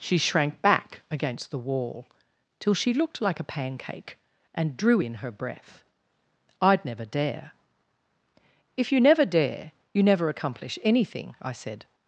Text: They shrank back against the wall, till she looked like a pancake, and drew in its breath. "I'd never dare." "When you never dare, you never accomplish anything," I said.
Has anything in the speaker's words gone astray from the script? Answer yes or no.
yes